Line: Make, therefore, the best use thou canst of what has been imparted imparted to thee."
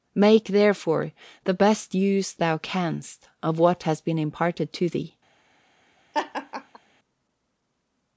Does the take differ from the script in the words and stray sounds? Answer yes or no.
yes